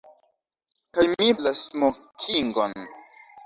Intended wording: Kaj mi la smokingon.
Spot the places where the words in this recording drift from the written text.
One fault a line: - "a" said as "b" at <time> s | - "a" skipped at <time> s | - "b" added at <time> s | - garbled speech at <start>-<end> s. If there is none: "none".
none